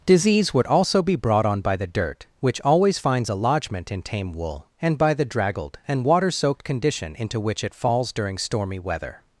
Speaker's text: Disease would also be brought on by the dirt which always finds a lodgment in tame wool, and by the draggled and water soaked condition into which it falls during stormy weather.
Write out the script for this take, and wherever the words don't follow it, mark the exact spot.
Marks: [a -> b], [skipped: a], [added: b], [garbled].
Disease would also be brought on by the dirt which always finds a lodgment in tame wool, and by the draggled and water soaked condition into which it falls during stormy weather.